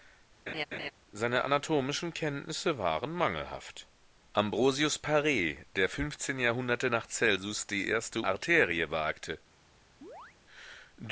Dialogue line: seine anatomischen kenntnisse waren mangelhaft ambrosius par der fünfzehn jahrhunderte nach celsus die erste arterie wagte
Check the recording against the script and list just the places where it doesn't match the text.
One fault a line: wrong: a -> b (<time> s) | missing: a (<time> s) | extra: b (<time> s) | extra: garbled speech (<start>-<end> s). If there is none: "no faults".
no faults